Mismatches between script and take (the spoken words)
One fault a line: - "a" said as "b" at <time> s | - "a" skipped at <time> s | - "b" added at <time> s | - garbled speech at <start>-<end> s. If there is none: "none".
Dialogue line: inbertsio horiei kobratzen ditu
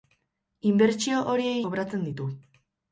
none